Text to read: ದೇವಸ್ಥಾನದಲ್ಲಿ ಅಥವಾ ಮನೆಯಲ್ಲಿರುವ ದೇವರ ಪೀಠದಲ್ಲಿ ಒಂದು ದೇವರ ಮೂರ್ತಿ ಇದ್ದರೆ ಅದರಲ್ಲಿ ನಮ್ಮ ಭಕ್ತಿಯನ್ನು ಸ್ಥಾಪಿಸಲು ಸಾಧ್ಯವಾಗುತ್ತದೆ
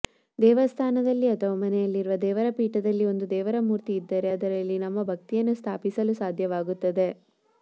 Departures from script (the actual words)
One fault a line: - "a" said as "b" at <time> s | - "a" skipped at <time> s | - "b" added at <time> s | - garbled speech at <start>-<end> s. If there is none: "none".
none